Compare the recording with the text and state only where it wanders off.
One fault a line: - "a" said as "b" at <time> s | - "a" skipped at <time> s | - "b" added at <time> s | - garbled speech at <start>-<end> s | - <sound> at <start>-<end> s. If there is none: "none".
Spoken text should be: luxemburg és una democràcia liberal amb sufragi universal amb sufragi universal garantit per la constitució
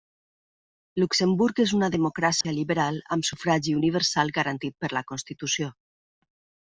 - dropout at 2.4-2.4 s
- "amb sufragi universal" skipped at 4.3 s